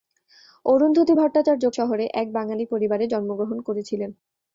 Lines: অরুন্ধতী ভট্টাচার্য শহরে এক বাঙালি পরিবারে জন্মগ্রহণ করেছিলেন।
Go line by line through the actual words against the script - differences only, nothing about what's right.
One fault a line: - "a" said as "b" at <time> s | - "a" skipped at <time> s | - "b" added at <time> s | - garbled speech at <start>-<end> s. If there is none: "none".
none